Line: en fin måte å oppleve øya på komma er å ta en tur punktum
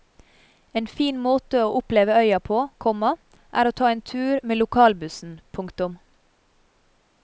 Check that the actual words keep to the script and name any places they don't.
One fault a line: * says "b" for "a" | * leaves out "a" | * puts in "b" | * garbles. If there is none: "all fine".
* puts in "med lokalbussen"